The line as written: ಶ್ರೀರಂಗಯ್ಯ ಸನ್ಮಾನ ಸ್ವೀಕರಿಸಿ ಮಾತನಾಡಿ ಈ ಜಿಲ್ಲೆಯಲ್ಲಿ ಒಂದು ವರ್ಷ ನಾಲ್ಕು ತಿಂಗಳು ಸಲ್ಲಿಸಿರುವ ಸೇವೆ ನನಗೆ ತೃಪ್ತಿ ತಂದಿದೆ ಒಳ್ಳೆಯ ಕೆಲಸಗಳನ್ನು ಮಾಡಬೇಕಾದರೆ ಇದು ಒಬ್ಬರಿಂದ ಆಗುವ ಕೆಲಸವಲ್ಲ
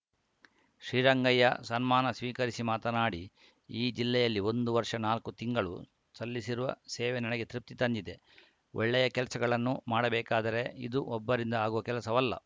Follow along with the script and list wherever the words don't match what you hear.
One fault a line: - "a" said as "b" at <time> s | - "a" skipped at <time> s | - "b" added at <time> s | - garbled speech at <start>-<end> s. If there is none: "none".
none